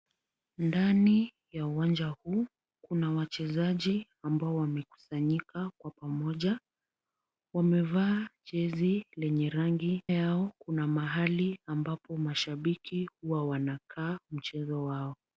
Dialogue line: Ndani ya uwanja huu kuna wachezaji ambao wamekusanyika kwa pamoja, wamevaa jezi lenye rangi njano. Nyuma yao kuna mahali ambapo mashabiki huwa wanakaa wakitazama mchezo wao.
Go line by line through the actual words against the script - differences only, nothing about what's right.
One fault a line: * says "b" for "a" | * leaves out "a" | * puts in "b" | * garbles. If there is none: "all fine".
* leaves out "njano Nyuma"
* leaves out "wakitazama"